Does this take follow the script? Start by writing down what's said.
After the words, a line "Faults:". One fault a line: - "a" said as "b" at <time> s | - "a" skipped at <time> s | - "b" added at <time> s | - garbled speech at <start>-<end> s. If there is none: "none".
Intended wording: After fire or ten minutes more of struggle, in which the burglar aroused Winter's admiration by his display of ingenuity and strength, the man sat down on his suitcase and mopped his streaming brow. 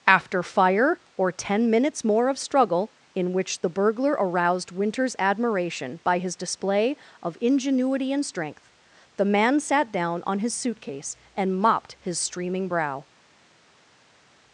After fire or ten minutes more of struggle, in which the burglar aroused Winter's admiration by his display of ingenuity and strength, the man sat down on his suitcase and mopped his streaming brow.
Faults:
none